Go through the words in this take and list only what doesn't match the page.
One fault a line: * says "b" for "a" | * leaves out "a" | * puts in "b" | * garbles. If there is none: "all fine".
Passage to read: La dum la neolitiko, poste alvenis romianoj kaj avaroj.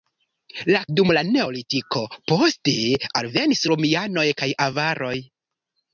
all fine